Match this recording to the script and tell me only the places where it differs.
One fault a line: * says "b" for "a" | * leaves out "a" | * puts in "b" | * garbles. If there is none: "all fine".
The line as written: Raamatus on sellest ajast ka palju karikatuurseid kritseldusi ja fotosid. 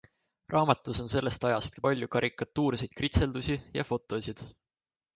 all fine